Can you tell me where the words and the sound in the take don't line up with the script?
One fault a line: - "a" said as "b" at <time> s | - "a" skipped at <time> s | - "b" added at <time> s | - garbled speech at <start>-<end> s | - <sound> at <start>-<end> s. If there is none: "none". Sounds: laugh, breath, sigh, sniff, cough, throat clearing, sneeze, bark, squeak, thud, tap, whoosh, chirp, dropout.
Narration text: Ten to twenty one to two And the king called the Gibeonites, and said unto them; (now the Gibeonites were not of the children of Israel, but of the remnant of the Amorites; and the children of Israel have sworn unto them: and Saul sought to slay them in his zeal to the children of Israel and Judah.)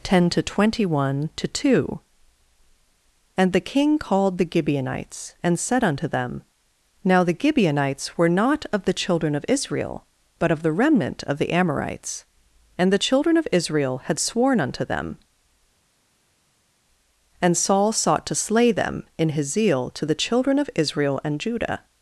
- "have" said as "had" at 14.1 s